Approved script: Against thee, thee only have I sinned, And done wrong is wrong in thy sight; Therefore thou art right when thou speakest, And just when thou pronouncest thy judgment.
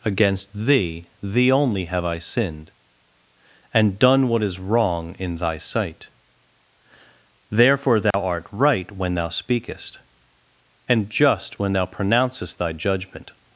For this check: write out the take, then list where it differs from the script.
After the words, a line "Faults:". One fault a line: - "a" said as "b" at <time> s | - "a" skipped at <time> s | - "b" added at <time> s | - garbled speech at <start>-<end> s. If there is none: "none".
Against thee, thee only have I sinned, And done what is wrong in thy sight; Therefore thou art right when thou speakest, And just when thou pronouncest thy judgment.
Faults:
- "wrong" said as "what" at 4.3 s